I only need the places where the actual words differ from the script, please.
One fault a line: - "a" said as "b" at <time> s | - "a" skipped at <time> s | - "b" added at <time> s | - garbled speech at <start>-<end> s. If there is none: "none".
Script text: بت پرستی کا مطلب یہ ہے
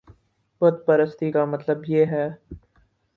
none